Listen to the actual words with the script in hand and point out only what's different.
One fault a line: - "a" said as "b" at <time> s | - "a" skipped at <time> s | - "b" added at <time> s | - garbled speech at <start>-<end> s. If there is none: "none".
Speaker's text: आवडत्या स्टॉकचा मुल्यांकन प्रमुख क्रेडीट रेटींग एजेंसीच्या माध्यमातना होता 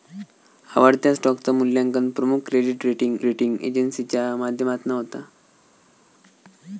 - "रेटींग" added at 3.2 s